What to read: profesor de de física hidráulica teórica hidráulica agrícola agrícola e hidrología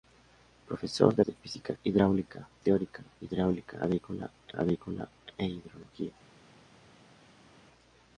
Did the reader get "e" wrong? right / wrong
right